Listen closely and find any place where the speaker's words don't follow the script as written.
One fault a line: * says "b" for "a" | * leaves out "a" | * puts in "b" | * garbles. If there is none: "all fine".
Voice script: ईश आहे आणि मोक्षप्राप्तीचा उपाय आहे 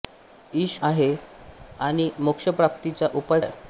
all fine